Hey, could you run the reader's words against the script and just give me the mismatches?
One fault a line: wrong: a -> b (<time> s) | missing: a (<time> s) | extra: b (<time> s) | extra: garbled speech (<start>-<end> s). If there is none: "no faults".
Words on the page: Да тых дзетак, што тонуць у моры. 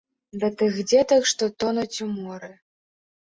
no faults